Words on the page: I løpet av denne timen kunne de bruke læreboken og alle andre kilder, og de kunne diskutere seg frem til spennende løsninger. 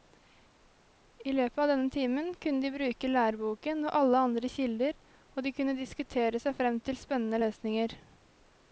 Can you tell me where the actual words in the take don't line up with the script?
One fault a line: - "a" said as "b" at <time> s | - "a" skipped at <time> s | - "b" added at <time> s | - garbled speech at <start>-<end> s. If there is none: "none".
none